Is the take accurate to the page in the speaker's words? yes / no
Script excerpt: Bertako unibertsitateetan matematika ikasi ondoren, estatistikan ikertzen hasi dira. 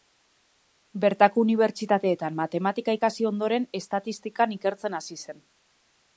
no